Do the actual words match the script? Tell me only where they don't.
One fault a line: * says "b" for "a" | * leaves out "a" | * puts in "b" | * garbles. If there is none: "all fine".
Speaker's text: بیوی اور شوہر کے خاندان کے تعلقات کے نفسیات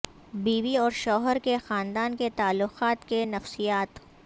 all fine